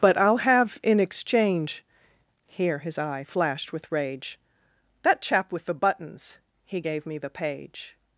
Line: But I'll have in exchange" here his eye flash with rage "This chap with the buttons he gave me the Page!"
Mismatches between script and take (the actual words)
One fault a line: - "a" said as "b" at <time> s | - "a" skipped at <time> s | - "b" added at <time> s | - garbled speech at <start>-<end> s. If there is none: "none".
- "flash" said as "flashed" at 3.2 s
- "This" said as "That" at 5.0 s